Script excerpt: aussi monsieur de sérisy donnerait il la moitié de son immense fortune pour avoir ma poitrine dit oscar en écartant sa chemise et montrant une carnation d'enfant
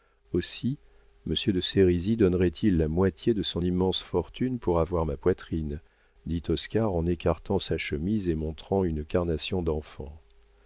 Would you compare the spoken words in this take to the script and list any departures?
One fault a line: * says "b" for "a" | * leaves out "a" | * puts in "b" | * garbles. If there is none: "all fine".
all fine